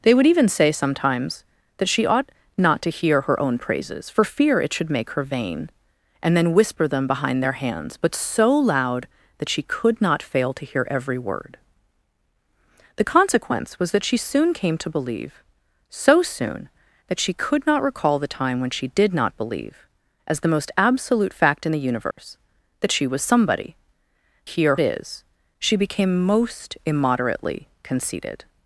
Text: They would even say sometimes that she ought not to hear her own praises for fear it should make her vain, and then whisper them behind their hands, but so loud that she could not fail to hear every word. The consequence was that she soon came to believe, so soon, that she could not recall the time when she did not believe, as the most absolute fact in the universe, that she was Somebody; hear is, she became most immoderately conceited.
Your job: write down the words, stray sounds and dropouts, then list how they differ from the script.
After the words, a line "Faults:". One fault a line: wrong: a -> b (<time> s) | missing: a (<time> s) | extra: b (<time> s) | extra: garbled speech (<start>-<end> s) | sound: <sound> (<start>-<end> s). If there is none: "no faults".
They would even say sometimes that she ought not to hear her own praises for fear it should make her vain, and then whisper them behind their hands, but so loud that she could not fail to hear every word. The consequence was that she soon came to believe, so soon, that she could not recall the time when she did not believe, as the most absolute fact in the universe, that she was Somebody; hear is, she became most immoderately conceited.
Faults:
sound: dropout (22.1-22.2 s)